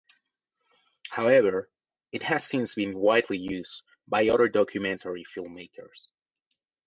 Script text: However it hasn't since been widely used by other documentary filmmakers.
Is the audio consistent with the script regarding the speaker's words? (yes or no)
no